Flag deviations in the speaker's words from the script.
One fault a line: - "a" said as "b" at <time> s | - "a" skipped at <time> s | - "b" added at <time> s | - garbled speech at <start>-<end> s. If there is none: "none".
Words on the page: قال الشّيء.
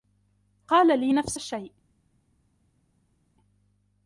- "لي نفس" added at 1.0 s